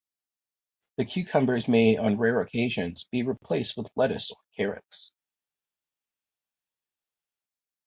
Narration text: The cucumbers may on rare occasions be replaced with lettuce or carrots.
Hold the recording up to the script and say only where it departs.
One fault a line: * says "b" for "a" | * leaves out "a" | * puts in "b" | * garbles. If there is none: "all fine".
all fine